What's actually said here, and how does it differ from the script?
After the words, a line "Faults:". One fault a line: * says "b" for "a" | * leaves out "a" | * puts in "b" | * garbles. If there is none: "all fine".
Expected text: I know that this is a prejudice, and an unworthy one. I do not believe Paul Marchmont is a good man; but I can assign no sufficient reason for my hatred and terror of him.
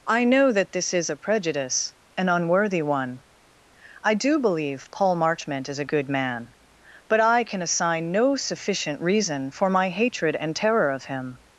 I know that this is a prejudice, an unworthy one. I do believe Paul Marchmont is a good man; but I can assign no sufficient reason for my hatred and terror of him.
Faults:
* leaves out "and"
* leaves out "not"